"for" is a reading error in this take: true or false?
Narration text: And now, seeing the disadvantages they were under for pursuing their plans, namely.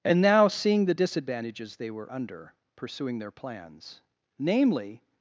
true